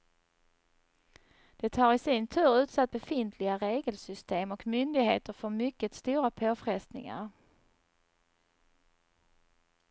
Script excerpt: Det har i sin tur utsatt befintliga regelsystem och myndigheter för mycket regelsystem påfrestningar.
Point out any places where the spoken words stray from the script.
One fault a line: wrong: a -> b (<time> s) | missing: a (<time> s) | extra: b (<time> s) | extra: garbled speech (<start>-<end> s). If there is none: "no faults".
wrong: regelsystem -> stora (5.9 s)